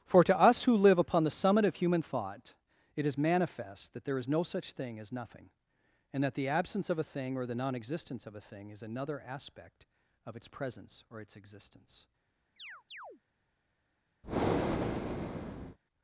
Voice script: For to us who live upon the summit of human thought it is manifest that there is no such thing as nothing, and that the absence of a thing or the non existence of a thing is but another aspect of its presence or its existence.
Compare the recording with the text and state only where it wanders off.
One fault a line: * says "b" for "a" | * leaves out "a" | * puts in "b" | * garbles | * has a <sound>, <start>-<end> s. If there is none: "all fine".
* leaves out "but"
* has a chirp, 12.6-13.2 s
* has a breath, 14.2-15.8 s